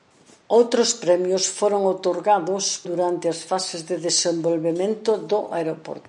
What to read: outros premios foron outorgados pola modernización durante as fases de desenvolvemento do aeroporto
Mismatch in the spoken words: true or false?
true